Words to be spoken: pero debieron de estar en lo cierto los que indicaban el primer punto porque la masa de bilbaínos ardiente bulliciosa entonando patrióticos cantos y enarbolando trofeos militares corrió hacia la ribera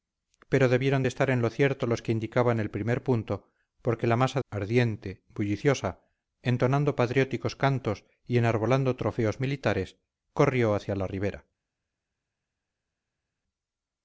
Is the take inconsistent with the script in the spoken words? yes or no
yes